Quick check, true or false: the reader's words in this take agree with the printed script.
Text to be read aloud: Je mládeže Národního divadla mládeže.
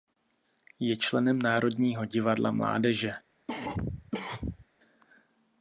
false